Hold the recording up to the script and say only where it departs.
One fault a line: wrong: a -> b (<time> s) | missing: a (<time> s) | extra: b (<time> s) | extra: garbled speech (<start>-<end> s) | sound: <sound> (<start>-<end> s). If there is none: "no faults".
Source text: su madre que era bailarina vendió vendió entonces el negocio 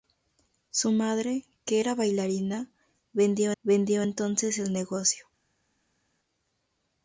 no faults